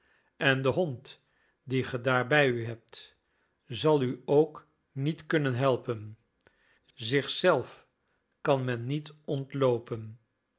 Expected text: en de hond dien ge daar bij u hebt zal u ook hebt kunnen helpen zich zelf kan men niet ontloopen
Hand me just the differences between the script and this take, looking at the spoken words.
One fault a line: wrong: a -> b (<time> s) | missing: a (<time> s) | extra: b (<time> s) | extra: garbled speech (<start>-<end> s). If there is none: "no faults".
wrong: hebt -> niet (4.9 s)